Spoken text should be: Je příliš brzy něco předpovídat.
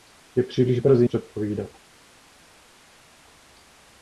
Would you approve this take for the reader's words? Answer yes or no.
no